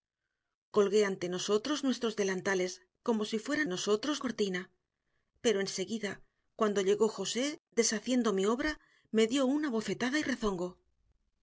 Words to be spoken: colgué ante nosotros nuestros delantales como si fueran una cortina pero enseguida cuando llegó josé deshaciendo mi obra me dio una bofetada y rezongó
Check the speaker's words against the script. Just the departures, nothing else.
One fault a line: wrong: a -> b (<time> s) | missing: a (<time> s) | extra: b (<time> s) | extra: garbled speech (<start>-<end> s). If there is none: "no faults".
wrong: una -> nosotros (3.7 s)